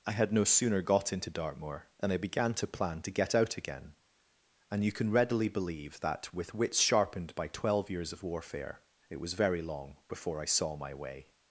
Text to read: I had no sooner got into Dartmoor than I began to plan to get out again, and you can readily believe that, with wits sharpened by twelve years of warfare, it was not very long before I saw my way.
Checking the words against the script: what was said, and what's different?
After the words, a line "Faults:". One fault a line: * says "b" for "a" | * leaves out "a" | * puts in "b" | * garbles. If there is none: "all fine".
I had no sooner got into Dartmoor than I began to plan to get out again, and you can readily believe that, with wits sharpened by twelve years of warfare, it was very long before I saw my way.
Faults:
* leaves out "not"